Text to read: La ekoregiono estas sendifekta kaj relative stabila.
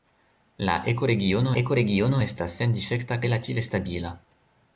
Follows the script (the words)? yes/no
no